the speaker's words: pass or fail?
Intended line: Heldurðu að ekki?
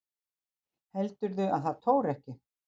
fail